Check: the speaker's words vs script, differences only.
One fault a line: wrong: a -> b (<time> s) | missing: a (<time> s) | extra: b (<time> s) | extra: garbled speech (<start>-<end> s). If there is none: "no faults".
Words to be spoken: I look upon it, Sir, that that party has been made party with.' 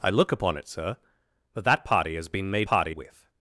no faults